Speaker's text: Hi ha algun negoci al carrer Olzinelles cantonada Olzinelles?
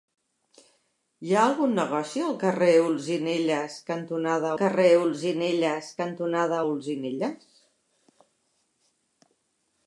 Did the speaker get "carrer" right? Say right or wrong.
right